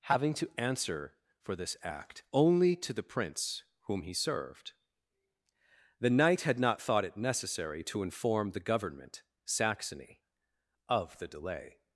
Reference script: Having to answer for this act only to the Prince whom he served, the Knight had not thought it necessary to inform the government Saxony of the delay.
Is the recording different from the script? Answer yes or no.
no